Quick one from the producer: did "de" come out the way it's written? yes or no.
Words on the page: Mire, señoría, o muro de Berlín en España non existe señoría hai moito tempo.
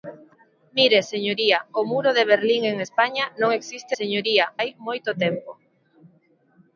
yes